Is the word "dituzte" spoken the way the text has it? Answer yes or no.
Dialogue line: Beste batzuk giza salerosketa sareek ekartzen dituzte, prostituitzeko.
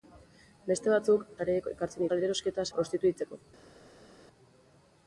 no